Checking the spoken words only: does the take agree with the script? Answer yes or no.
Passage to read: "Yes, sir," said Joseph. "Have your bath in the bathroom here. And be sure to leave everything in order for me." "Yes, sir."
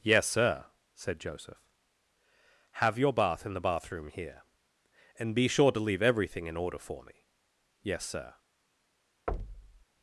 yes